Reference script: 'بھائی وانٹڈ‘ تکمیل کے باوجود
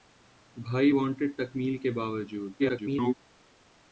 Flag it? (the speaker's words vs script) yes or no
yes